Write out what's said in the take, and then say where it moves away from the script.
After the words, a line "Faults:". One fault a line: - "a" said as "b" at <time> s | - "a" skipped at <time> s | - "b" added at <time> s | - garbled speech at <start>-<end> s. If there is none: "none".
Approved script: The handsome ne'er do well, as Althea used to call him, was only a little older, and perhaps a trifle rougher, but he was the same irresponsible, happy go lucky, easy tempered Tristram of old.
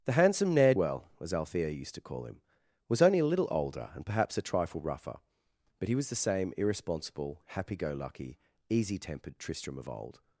The handsome ne'er well, as Althea used to call him, was only a little older, and perhaps a trifle rougher, but he was the same irresponsible, happy go lucky, easy tempered Tristram of old.
Faults:
- "do" skipped at 0.7 s